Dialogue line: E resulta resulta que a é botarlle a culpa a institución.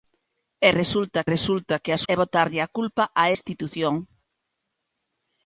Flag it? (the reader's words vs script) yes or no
no